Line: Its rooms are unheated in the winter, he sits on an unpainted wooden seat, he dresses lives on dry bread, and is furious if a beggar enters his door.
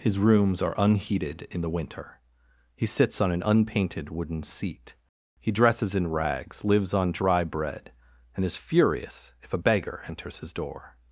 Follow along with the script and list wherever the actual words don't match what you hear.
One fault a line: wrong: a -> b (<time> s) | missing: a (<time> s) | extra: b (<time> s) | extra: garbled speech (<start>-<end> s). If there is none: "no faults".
wrong: Its -> His (0.0 s)
extra: in rags (5.9 s)